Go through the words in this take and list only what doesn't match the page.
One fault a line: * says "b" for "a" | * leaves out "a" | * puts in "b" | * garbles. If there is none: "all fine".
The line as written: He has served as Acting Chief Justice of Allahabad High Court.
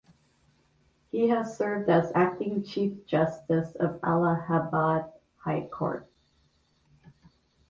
all fine